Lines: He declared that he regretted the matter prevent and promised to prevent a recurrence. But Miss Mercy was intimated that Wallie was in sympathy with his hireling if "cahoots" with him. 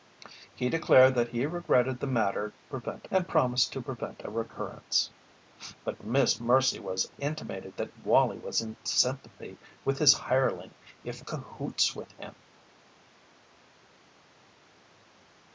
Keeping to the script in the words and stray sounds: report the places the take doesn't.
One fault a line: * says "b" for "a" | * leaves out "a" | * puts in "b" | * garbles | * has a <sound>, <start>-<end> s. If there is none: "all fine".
all fine